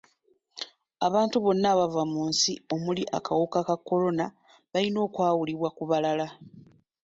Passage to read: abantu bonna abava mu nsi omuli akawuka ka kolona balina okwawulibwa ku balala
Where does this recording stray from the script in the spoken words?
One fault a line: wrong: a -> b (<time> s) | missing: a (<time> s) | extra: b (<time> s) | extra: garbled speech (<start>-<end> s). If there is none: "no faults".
no faults